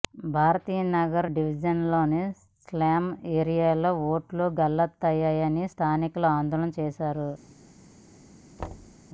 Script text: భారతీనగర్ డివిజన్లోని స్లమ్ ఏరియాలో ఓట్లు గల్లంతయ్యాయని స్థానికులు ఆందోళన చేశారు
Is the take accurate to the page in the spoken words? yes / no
yes